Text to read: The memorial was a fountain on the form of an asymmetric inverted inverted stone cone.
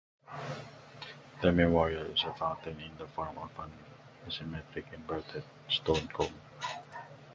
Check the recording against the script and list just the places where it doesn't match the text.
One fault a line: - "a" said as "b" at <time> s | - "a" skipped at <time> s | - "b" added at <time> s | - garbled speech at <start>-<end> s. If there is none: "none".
- "was" said as "is" at 2.1 s
- "on" said as "in" at 2.7 s
- "inverted" skipped at 5.4 s